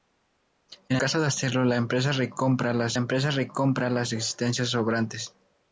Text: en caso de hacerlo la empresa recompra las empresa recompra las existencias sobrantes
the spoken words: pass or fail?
pass